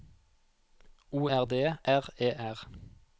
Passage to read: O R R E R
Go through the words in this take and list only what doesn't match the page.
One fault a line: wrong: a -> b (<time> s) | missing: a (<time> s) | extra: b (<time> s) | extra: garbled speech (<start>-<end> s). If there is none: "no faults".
extra: D (1.4 s)